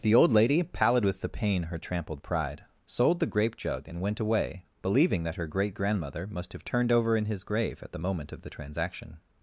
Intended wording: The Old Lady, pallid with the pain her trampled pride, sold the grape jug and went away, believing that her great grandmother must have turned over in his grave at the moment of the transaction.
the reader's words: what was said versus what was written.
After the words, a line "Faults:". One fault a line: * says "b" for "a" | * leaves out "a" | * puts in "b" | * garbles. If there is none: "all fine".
The Old Lady, pallid with the pain her trampled pride, sold the grape jug and went away, believing that her great grandmother must have turned over in his grave at the moment of the transaction.
Faults:
all fine